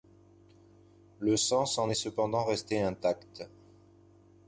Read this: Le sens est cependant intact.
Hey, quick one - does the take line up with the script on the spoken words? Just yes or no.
no